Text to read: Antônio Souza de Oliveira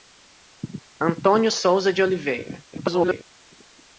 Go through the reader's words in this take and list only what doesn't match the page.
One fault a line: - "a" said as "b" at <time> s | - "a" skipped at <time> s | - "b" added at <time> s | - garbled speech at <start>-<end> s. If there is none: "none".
- garbled speech at 2.7-3.2 s